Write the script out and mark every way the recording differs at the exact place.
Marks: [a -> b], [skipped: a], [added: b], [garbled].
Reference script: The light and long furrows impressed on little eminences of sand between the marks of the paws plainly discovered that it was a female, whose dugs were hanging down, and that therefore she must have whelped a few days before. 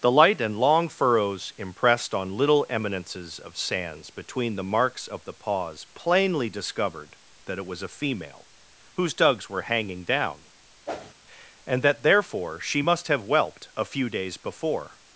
The light and long furrows impressed on little eminences of [sand -> sands] between the marks of the paws plainly discovered that it was a female, whose dugs were hanging down, and that therefore she must have whelped a few days before.